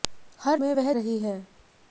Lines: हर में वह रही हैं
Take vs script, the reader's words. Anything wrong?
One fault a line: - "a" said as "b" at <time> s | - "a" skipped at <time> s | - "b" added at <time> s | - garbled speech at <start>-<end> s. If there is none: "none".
none